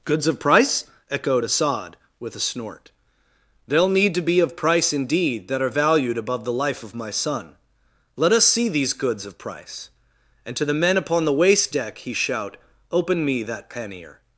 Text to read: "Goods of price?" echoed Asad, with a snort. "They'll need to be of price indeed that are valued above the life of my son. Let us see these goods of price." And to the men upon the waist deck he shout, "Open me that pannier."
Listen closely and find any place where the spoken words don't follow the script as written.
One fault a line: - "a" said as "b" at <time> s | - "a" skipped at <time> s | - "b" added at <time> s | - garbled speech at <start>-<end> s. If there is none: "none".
none